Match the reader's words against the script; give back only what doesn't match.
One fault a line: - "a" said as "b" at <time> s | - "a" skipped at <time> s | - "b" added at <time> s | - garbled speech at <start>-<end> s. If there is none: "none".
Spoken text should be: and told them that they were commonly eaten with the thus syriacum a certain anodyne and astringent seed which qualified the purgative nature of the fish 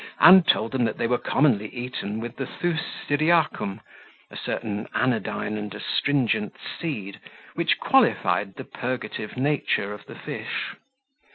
none